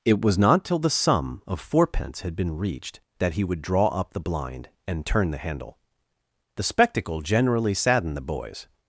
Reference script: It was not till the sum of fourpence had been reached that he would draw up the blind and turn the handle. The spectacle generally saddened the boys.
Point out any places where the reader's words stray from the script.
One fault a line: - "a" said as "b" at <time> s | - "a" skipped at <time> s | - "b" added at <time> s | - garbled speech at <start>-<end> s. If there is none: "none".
none